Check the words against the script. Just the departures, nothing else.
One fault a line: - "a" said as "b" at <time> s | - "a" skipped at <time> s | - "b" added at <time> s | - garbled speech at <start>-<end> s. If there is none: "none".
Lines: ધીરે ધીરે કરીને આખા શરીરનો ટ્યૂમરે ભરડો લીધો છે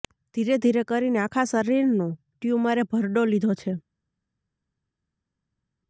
none